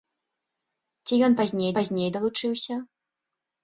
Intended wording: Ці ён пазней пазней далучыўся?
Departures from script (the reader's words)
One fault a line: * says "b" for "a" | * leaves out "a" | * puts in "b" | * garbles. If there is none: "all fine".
all fine